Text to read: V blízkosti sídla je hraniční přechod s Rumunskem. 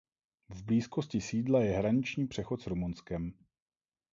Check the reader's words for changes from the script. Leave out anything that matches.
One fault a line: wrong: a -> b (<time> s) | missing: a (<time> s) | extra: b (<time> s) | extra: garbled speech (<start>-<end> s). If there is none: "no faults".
no faults